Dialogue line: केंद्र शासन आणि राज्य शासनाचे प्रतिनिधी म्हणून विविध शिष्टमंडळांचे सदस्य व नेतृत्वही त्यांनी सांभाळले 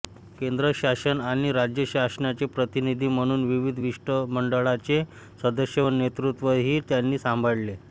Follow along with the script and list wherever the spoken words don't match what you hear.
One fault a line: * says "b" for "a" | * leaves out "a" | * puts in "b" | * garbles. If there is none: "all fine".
all fine